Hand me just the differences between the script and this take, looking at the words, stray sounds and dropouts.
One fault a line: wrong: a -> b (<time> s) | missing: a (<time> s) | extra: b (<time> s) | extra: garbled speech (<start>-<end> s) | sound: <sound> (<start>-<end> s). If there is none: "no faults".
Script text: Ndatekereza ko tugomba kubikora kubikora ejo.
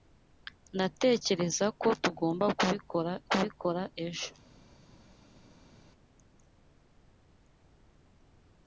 no faults